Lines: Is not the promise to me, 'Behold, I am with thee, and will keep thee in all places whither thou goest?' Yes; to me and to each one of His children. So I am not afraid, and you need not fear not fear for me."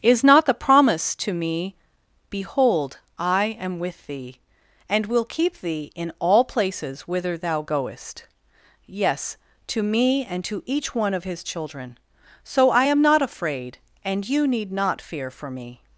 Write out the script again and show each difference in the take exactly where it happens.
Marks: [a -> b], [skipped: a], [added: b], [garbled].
Is not the promise to me, 'Behold, I am with thee, and will keep thee in all places whither thou goest?' Yes; to me and to each one of His children. So I am not afraid, and you need not fear [skipped: not fear] for me."